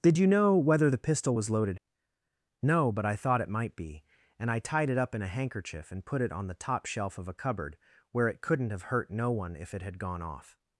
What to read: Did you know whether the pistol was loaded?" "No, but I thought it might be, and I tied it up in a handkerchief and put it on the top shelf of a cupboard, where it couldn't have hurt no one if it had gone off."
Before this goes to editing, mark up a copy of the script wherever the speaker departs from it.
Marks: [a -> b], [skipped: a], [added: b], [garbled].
Did you know whether the pistol was loaded?" "No, but I thought it might be, and I tied it up in a handkerchief and put it on the top shelf of a cupboard, where it couldn't have hurt no one if it had gone off."